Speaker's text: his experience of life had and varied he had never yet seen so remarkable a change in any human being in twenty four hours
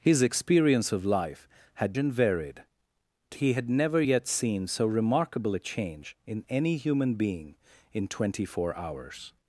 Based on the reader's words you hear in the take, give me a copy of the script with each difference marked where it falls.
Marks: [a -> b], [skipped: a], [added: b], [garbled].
his experience of life had and varied he had never yet seen so remarkable a change in any human being in twenty four hours